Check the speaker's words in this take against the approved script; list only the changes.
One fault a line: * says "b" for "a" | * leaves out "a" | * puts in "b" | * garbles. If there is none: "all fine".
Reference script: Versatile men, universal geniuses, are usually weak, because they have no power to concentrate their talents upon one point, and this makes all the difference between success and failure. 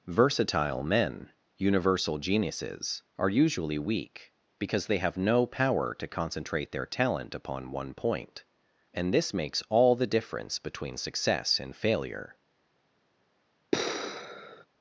* says "talent" for "talents"